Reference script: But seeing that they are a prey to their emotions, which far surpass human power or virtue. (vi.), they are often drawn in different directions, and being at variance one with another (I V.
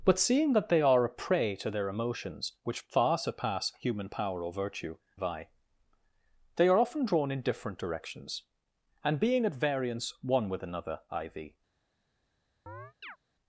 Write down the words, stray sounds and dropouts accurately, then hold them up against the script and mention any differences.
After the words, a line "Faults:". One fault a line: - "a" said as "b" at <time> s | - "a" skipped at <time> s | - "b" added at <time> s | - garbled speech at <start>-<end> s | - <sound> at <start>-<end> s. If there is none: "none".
But seeing that they are a prey to their emotions, which far surpass human power or virtue. (vi.), they are often drawn in different directions, and being at variance one with another (I V.
Faults:
- chirp at 12.7-13.2 s